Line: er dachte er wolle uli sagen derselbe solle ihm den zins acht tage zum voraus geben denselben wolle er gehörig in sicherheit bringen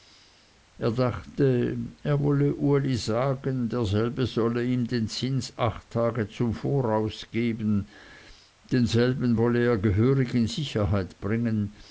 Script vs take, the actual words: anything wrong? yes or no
no